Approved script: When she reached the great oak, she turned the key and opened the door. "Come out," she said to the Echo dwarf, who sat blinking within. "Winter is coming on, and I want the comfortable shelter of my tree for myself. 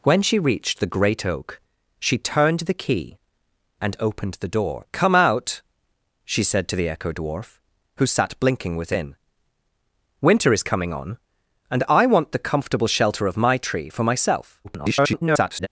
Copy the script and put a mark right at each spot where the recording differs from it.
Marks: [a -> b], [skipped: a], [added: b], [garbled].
When she reached the great oak, she turned the key and opened the door. "Come out," she said to the Echo dwarf, who sat blinking within. "Winter is coming on, and I want the comfortable shelter of my tree for myself. [garbled]